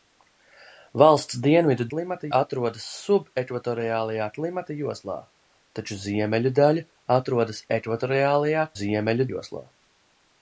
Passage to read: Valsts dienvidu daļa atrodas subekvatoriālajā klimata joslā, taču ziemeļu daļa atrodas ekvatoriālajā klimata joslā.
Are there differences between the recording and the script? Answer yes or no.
yes